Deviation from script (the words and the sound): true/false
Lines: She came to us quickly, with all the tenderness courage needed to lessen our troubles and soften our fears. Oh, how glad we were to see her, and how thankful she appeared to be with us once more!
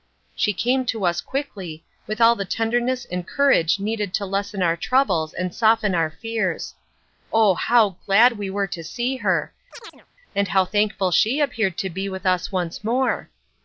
true